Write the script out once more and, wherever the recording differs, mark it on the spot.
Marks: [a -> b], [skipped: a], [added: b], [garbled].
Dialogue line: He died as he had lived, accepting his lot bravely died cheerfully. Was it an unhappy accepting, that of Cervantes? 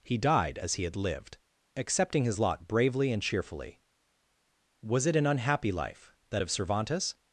He died as he had lived, accepting his lot bravely [died -> and] cheerfully. Was it an unhappy [accepting, -> life] that of Cervantes?